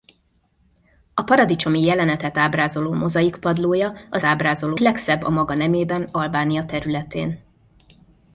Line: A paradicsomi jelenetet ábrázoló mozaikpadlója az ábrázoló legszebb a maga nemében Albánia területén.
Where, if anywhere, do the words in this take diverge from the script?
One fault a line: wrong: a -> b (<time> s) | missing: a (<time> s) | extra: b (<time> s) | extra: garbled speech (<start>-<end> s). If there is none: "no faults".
no faults